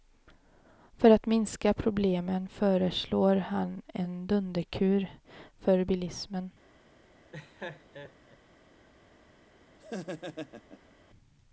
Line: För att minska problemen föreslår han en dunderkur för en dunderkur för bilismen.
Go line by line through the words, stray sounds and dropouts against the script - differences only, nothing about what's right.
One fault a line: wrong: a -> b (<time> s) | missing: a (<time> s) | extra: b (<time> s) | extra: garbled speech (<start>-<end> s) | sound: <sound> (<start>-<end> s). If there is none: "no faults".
missing: en dunderkur för (5.8 s)
sound: laugh (7.3-8.4 s)
sound: laugh (9.8-10.9 s)